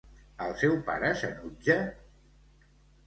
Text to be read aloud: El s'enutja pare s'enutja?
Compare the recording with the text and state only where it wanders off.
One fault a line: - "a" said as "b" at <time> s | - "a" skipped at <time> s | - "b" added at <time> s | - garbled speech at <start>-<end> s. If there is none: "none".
- "s'enutja" said as "seu" at 0.6 s